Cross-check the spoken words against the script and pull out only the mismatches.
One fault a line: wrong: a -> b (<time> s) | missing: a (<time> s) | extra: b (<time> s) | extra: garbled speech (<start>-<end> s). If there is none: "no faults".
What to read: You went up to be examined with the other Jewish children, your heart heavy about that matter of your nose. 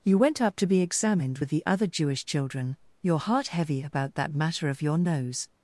no faults